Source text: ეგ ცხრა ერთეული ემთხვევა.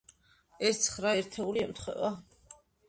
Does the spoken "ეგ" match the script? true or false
false